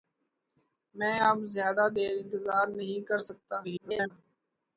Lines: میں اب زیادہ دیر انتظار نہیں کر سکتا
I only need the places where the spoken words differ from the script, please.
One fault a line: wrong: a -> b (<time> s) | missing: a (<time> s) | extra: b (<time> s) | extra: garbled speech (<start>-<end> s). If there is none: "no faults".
extra: garbled speech (3.6-4.1 s)